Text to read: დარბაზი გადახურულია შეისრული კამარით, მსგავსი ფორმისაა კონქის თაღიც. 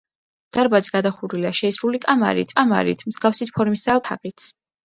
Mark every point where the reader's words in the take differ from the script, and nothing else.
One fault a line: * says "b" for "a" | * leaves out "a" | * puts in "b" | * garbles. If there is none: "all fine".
* puts in "კამარით"
* leaves out "კონქის"